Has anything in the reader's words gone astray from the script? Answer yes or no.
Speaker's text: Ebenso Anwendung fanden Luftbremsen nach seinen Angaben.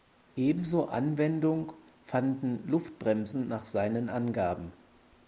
no